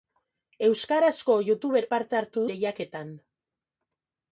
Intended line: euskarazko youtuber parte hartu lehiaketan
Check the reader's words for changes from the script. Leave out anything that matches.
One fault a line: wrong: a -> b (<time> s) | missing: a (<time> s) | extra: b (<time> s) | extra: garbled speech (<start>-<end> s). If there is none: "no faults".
no faults